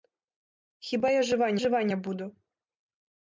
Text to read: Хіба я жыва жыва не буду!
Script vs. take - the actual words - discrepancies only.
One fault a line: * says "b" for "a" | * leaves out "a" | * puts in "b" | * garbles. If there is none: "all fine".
all fine